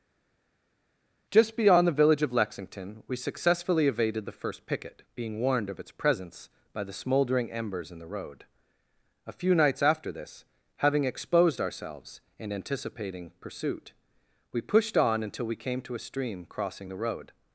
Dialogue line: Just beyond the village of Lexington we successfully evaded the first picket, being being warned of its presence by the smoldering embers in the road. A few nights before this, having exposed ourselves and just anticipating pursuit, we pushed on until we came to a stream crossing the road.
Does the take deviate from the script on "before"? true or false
true